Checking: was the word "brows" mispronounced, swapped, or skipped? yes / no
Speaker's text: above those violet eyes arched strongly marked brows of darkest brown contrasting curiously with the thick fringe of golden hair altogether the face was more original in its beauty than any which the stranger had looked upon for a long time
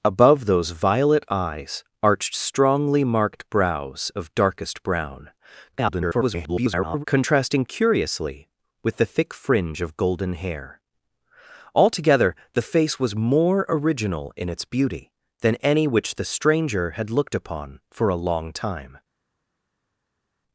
no